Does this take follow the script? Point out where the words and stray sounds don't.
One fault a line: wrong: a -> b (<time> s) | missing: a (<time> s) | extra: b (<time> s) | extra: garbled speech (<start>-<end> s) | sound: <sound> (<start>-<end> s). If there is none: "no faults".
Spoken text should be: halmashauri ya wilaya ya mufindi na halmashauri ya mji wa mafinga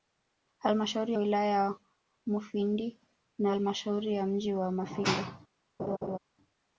missing: ya (1.1 s)
sound: laugh (5.8-6.2 s)